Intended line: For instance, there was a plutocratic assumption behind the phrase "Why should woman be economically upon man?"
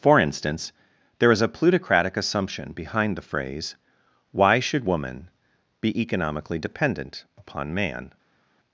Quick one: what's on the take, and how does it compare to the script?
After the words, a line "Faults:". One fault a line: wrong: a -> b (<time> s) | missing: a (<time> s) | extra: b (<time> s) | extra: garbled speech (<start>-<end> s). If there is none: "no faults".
For instance, there is a plutocratic assumption behind the phrase "Why should woman be economically dependent upon man?"
Faults:
wrong: was -> is (1.3 s)
extra: dependent (6.6 s)